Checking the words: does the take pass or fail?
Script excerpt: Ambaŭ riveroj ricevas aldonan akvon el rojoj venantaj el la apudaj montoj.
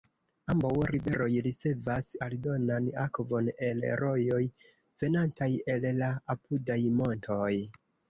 pass